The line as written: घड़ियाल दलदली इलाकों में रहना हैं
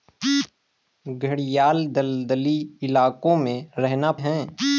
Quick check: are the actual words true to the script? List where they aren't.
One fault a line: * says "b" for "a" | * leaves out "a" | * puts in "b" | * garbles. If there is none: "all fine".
all fine